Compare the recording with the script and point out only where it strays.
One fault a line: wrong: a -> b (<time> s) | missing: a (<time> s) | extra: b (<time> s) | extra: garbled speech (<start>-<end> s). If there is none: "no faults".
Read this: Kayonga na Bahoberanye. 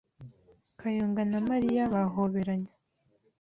extra: Mariya (1.5 s)